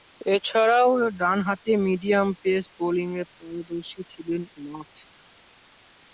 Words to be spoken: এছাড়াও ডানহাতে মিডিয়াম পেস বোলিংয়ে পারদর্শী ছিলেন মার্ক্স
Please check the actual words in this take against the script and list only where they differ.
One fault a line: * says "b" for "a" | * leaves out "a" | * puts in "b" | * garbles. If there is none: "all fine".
all fine